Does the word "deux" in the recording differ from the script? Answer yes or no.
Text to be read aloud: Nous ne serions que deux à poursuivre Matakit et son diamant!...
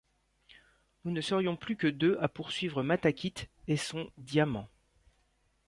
no